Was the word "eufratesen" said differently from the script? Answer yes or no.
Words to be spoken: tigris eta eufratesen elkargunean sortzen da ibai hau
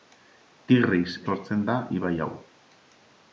yes